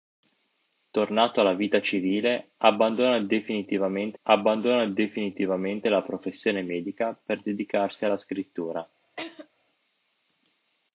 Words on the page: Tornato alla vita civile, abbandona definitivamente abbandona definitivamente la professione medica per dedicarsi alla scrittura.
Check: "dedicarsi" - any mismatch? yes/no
no